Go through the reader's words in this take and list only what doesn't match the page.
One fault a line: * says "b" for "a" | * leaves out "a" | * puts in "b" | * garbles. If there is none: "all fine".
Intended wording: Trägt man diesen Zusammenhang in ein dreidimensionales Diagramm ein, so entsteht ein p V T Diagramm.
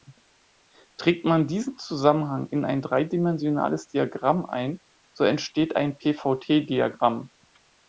all fine